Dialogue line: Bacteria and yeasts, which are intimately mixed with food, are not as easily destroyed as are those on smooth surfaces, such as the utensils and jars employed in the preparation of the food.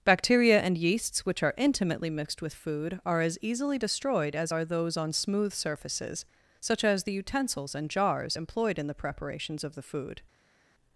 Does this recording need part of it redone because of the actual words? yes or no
yes